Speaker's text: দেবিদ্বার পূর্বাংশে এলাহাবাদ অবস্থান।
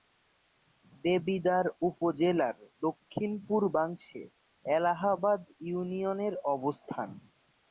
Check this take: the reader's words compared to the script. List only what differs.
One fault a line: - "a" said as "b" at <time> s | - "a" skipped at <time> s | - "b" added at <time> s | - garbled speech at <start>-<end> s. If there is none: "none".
- "উপজেলার দক্ষিণ" added at 1.9 s
- "ইউনিয়নের" added at 5.6 s